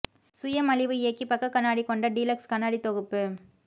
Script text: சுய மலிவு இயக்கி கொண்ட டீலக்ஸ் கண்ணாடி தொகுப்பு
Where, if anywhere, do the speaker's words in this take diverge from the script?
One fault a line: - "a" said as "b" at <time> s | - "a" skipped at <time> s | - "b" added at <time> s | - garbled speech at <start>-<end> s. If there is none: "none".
- "பக்க கண்ணாடி" added at 1.3 s